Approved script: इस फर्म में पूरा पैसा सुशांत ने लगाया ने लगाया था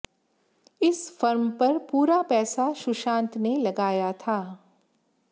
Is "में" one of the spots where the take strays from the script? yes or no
yes